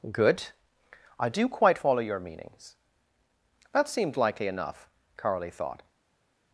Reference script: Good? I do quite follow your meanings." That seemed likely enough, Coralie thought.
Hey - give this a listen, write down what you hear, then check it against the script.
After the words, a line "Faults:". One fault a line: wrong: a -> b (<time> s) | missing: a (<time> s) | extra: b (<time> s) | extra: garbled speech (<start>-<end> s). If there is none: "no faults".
Good? I do quite follow your meanings." That seemed likely enough, Coralie thought.
Faults:
no faults